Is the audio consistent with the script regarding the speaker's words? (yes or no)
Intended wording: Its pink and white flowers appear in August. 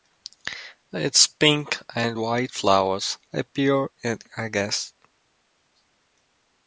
yes